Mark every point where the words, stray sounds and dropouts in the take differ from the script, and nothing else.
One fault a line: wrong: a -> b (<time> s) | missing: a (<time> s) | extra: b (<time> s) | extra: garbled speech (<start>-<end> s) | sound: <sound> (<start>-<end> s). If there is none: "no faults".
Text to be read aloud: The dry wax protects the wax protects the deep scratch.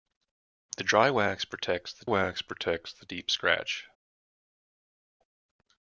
no faults